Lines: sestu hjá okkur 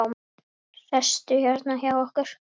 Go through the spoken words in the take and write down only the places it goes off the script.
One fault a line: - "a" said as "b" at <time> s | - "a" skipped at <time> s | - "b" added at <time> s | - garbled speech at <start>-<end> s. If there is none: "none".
- "hérna" added at 1.4 s